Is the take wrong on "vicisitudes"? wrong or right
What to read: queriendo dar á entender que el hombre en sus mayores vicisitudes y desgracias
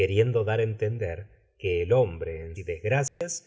wrong